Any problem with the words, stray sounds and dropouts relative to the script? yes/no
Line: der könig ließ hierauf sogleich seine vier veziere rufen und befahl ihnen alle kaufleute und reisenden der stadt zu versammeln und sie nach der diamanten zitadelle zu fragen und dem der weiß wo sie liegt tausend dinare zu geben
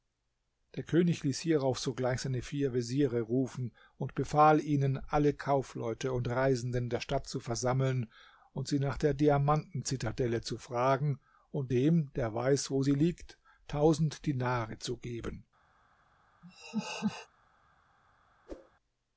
yes